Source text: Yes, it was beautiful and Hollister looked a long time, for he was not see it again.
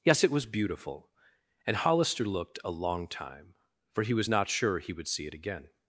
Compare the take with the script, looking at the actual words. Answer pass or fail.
fail